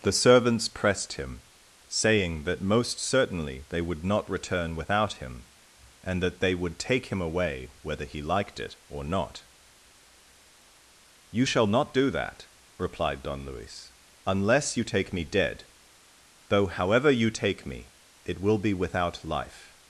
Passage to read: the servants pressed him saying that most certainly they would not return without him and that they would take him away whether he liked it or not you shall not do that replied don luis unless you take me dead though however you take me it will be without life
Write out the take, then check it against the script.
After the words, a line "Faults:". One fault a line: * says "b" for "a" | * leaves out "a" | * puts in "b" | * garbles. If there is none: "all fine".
the servants pressed him saying that most certainly they would not return without him and that they would take him away whether he liked it or not you shall not do that replied don luis unless you take me dead though however you take me it will be without life
Faults:
all fine